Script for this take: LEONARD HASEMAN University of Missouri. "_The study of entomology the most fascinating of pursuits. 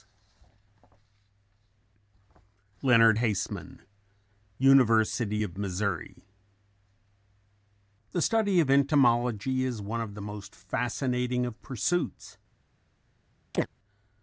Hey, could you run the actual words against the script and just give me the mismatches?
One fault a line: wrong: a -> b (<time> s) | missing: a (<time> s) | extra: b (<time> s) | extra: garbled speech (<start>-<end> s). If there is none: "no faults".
extra: is one of (9.6 s)